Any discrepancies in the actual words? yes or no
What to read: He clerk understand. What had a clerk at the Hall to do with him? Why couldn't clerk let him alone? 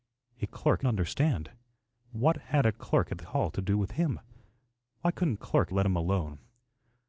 no